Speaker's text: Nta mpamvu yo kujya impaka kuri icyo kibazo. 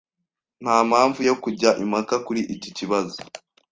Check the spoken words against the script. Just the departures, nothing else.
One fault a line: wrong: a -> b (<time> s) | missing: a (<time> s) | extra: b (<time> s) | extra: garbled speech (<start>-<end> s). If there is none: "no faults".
wrong: icyo -> iki (2.5 s)